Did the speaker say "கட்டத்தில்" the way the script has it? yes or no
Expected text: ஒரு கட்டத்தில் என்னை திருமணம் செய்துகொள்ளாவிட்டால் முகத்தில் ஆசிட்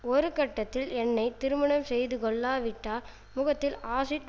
yes